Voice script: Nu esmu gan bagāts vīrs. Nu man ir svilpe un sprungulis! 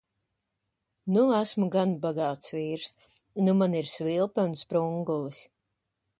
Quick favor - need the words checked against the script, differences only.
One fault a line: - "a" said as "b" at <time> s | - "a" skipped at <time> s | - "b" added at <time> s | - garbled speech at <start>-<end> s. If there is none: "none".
none